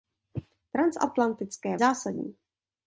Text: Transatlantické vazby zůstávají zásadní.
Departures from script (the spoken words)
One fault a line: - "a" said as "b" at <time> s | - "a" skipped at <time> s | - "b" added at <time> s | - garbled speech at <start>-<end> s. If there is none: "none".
- "vazby zůstávají" skipped at 1.8 s